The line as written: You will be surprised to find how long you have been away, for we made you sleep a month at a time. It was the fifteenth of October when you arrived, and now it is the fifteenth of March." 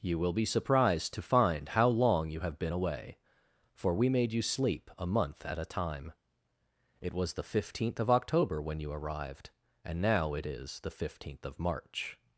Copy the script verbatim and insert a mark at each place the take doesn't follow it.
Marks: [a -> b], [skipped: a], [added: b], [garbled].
You will be surprised to find how long you have been away, for we made you sleep a month at a time. It was the fifteenth of October when you arrived, and now it is the fifteenth of March."